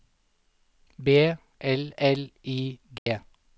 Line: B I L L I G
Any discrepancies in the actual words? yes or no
yes